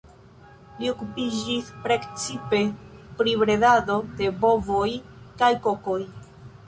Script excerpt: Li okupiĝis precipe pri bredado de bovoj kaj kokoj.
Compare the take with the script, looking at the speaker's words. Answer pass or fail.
pass